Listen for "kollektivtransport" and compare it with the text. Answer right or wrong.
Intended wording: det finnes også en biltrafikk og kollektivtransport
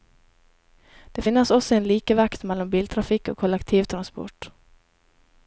right